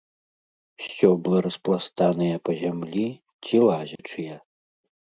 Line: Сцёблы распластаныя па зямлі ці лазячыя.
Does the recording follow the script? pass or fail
pass